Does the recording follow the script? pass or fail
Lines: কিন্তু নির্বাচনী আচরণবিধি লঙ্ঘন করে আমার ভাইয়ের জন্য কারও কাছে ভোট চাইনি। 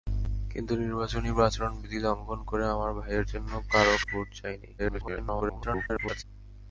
fail